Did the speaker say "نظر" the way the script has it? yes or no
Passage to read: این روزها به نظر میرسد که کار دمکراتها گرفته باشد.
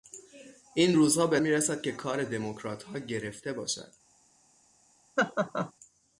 no